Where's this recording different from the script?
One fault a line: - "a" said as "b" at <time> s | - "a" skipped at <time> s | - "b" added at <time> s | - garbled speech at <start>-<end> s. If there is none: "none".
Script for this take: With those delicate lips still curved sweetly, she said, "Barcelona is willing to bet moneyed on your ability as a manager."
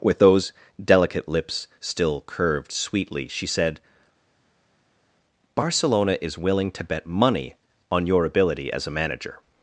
- "moneyed" said as "money" at 7.1 s